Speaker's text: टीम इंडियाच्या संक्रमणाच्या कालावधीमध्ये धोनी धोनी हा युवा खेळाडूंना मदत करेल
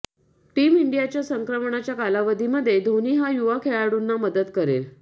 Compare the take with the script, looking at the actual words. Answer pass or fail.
fail